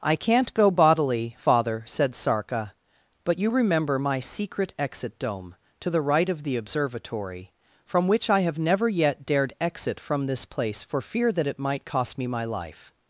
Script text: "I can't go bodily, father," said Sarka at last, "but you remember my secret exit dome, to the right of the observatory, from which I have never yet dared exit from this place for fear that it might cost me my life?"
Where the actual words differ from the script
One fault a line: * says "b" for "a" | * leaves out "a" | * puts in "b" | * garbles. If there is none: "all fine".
* leaves out "at last"